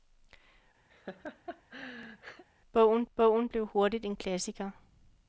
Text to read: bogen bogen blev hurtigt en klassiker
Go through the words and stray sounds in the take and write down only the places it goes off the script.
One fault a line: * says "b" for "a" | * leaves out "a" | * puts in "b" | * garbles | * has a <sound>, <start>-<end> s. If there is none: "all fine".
* has a laugh, 0.9-2.4 s